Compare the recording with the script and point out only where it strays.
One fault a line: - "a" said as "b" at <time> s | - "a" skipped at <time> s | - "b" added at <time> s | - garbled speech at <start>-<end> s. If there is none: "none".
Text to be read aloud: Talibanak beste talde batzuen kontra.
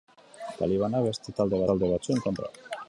- "talde" added at 1.7 s